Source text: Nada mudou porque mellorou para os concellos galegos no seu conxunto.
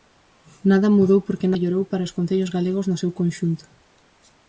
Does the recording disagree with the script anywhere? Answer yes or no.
no